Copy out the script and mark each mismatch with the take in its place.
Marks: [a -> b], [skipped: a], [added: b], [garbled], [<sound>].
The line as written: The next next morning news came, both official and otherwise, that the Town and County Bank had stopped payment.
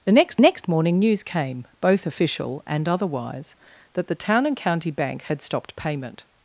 The next next morning news came, both official and otherwise, that the Town and County Bank had stopped payment.